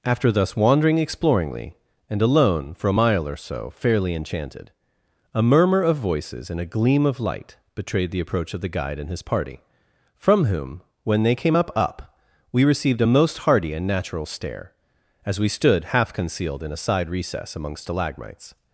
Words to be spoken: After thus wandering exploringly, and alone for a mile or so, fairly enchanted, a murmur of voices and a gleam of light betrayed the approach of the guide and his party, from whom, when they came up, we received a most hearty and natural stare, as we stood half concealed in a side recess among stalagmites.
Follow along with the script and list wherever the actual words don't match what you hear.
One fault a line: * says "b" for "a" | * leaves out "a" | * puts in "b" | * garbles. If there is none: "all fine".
* puts in "up"